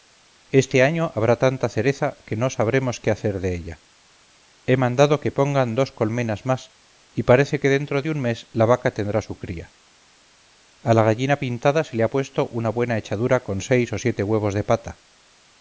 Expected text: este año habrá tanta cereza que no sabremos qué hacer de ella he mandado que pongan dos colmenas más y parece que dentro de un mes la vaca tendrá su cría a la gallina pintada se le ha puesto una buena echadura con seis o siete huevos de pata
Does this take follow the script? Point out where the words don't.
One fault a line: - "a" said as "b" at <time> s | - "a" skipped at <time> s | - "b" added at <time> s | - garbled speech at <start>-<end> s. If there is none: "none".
none